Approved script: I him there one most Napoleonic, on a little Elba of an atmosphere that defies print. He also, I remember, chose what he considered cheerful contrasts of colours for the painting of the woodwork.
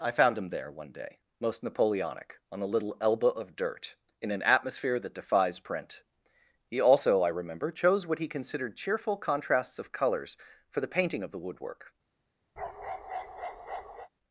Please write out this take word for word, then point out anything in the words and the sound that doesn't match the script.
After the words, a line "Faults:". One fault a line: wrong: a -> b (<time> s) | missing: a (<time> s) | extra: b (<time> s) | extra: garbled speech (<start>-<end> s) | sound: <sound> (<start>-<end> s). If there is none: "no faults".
I found him there one day, most Napoleonic, on a little Elba of dirt, in an atmosphere that defies print. He also, I remember, chose what he considered cheerful contrasts of colours for the painting of the woodwork.
Faults:
extra: found (0.1 s)
extra: day (0.9 s)
extra: dirt in (3.5 s)
sound: bark (12.6-14.1 s)